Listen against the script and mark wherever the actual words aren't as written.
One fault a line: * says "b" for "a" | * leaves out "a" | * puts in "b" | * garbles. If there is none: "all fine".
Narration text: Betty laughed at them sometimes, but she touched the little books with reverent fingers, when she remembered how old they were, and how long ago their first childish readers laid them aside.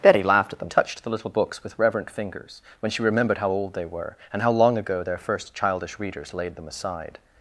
* leaves out "sometimes but she"